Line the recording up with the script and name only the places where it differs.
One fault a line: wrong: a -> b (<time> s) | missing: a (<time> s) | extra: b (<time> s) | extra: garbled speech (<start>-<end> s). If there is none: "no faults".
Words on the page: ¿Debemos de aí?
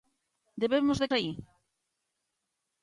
no faults